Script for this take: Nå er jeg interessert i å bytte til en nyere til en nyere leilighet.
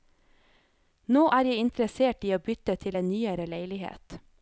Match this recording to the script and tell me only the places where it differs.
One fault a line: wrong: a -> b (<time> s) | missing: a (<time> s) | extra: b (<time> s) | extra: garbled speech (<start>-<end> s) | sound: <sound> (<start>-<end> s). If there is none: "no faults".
missing: til en nyere (3.5 s)